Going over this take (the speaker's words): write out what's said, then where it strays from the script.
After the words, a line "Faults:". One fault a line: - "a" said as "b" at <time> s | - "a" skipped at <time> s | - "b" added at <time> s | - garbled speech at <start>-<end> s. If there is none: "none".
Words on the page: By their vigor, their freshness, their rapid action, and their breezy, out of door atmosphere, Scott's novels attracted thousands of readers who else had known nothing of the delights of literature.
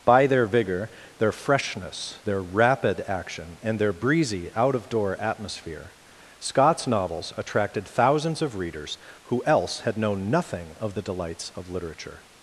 By their vigor, their freshness, their rapid action, and their breezy, out of door atmosphere, Scott's novels attracted thousands of readers who else had known nothing of the delights of literature.
Faults:
none